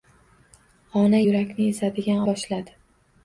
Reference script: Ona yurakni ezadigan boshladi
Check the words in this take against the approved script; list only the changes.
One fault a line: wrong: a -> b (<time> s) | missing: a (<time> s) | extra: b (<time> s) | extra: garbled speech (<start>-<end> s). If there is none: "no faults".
no faults